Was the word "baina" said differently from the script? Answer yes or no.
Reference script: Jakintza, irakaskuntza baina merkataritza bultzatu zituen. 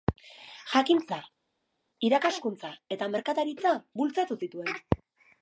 yes